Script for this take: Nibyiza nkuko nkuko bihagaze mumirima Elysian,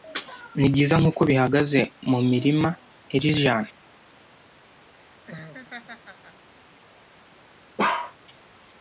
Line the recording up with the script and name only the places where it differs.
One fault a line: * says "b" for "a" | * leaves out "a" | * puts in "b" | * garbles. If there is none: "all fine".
* leaves out "nkuko"